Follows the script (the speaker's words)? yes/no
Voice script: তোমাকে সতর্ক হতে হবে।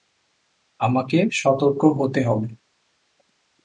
no